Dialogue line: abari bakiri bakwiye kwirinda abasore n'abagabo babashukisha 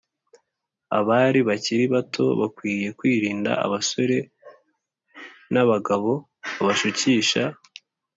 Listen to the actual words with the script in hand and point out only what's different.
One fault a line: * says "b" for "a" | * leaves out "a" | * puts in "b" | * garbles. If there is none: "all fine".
* puts in "bato"